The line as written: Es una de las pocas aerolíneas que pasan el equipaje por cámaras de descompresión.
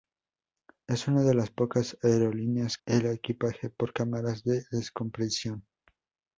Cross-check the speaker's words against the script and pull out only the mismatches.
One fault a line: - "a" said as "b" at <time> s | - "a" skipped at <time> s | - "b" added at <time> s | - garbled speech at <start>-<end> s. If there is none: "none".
- "que pasan" skipped at 2.8 s